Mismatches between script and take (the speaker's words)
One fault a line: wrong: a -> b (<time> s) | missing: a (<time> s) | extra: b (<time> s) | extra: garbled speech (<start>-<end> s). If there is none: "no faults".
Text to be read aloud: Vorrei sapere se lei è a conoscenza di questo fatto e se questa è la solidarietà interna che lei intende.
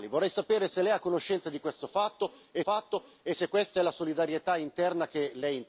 extra: fatto e (2.6 s)